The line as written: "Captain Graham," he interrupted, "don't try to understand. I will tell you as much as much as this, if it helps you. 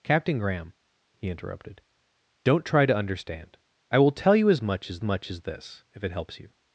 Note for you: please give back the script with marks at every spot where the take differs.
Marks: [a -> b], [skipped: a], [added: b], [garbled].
"Captain Graham," he interrupted, "don't try to understand. I will tell you as much as much as this, if it helps you.